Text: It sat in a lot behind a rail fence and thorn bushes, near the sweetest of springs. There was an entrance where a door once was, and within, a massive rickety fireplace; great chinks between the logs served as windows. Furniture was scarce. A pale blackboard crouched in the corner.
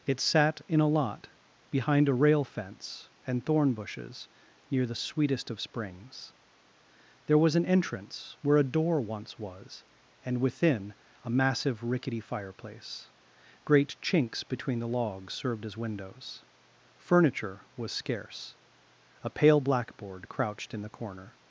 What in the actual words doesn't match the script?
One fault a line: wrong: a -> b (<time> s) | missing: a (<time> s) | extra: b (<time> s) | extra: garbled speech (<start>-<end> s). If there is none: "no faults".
no faults